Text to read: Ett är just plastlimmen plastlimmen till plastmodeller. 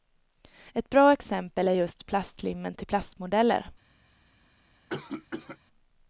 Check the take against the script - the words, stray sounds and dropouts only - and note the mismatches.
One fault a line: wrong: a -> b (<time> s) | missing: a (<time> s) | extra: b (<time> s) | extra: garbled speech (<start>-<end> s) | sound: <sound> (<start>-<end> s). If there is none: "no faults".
extra: bra exempel (0.9 s)
missing: plastlimmen (2.7 s)
sound: cough (4.9-5.6 s)